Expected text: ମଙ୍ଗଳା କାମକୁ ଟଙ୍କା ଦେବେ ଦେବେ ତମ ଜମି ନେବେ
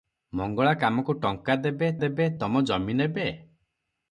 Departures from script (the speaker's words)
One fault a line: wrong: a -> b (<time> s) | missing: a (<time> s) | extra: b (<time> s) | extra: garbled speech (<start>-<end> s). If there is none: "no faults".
no faults